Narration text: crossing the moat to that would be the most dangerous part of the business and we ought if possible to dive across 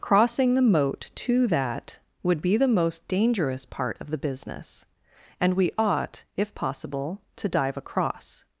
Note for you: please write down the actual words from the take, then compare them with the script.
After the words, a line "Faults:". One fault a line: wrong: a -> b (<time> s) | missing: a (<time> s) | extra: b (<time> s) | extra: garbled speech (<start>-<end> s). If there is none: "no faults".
crossing the moat to that would be the most dangerous part of the business and we ought if possible to dive across
Faults:
no faults